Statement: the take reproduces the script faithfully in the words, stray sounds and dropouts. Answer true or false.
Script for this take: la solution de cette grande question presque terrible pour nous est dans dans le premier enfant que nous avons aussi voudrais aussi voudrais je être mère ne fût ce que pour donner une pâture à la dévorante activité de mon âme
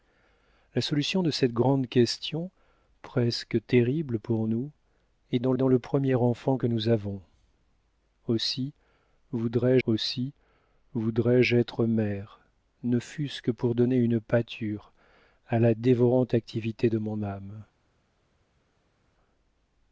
true